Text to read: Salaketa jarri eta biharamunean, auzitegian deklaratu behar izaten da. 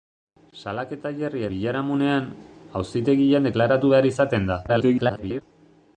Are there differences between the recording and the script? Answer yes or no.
yes